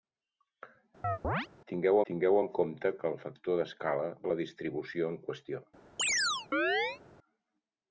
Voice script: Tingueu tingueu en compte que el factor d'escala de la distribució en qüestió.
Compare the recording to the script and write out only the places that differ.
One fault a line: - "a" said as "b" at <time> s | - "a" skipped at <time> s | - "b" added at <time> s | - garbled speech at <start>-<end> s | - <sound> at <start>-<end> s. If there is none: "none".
- chirp at 1.0-1.5 s
- chirp at 6.0-7.0 s